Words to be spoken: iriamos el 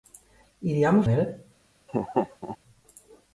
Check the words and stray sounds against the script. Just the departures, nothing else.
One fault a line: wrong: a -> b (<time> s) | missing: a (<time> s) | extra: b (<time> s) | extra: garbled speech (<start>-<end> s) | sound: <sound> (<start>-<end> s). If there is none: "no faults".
sound: laugh (1.9-2.6 s)